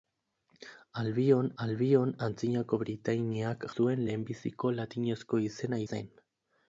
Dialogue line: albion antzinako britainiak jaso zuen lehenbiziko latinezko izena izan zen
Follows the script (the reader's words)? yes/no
no